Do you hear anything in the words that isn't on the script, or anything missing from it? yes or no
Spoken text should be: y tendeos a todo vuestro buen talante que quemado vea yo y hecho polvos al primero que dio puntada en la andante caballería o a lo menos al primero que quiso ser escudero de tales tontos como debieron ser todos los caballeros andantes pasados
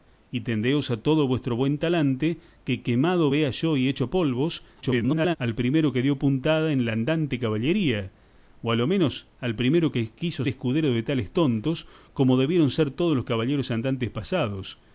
yes